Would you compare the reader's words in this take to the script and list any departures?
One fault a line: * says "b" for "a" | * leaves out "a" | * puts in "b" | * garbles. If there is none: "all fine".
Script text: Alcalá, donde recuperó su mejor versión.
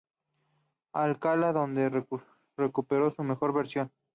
all fine